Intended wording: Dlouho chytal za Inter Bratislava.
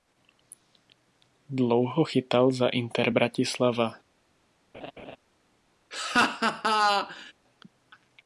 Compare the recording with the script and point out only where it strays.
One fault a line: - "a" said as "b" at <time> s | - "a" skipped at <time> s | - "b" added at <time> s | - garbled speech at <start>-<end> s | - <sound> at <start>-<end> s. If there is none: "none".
- laugh at 4.7-5.2 s
- laugh at 5.9-7.3 s